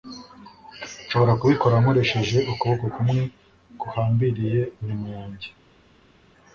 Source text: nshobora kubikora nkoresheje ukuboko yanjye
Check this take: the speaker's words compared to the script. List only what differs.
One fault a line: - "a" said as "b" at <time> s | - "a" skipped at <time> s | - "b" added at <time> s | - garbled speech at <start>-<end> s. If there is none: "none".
- "kumwe guhambiriye inyuma" added at 2.9 s